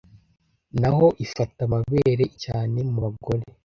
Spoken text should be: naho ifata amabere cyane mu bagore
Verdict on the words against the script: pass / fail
pass